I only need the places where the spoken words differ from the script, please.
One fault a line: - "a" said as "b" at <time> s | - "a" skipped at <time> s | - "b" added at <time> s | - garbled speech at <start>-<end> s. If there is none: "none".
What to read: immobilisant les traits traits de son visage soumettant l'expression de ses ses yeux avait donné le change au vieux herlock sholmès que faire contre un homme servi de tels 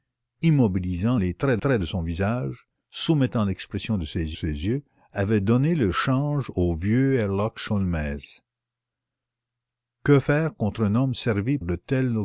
none